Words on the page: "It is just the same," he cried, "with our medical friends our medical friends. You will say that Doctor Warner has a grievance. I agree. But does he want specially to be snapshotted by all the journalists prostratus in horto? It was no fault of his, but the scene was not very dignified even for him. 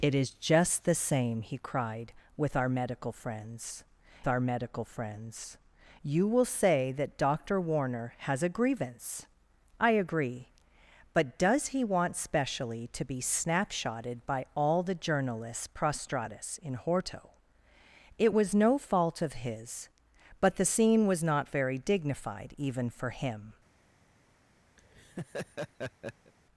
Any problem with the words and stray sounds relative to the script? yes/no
yes